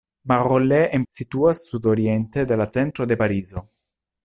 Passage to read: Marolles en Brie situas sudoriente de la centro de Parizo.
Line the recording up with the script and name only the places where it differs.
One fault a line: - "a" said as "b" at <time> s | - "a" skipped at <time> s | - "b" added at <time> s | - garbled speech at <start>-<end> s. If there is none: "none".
- "Brie" skipped at 1.0 s